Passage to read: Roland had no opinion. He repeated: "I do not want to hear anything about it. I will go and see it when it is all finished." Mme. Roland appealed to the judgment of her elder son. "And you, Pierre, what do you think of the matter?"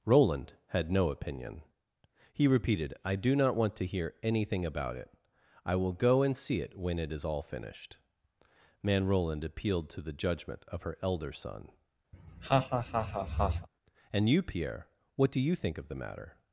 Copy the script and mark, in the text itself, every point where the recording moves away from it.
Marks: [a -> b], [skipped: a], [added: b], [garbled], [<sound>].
Roland had no opinion. He repeated: "I do not want to hear anything about it. I will go and see it when it is all finished." [Mme. -> Man] Roland appealed to the judgment of her elder son. [laugh] "And you, Pierre, what do you think of the matter?"